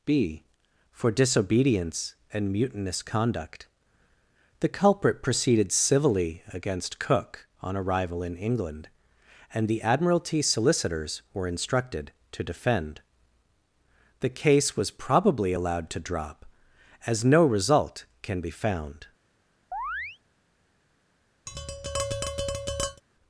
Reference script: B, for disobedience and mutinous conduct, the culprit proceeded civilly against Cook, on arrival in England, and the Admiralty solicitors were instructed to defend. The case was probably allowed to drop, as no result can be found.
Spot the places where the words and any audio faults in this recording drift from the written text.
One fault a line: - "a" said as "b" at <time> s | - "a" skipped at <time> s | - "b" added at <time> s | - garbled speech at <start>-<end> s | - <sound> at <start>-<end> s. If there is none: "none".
- chirp at 19.7-20.2 s
- tap at 21.5-23.0 s